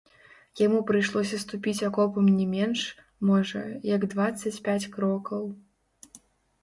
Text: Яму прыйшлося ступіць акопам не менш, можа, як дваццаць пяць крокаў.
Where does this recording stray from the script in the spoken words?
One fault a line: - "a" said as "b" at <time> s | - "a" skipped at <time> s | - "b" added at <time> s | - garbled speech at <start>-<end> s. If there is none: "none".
none